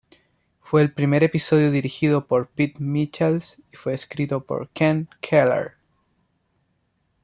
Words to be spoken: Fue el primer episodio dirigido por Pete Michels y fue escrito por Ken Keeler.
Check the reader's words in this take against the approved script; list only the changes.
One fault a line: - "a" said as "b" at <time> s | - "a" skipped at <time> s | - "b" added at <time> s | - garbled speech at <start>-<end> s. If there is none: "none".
none